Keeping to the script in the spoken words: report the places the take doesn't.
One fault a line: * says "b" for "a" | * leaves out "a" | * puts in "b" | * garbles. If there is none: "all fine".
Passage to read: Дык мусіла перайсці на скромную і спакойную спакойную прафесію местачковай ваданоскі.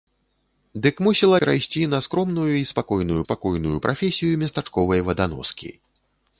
all fine